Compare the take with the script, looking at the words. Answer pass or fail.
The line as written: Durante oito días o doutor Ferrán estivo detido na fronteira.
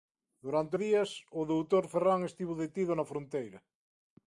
fail